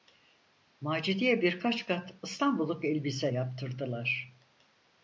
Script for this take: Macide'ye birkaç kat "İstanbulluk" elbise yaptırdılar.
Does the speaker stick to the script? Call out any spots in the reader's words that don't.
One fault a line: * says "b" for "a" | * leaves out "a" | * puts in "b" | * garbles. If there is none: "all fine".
all fine